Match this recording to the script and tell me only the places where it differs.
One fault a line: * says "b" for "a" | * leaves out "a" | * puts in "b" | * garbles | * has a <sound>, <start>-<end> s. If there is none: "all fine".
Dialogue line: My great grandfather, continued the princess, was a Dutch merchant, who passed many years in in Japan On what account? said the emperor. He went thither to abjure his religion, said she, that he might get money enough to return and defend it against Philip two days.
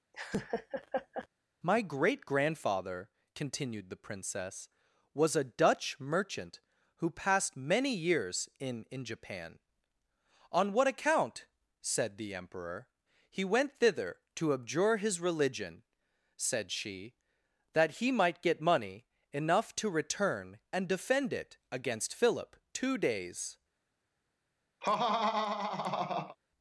* has a laugh, 0.1-1.3 s
* has a laugh, 24.8-26.4 s